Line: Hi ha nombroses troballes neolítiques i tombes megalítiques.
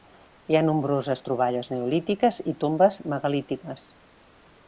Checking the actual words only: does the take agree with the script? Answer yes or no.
yes